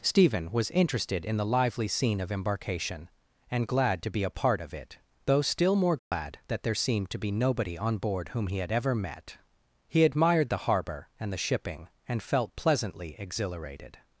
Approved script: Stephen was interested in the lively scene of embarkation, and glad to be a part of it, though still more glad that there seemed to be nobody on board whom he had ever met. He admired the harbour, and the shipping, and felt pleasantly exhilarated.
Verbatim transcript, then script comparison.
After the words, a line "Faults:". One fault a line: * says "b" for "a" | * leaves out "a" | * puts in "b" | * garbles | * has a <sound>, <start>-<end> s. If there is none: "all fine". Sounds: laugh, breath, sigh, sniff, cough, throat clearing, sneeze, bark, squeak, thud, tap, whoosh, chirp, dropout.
Stephen was interested in the lively scene of embarkation, and glad to be a part of it, though still more glad that there seemed to be nobody on board whom he had ever met. He admired the harbour, and the shipping, and felt pleasantly exhilarated.
Faults:
* has a dropout, 6.0-6.1 s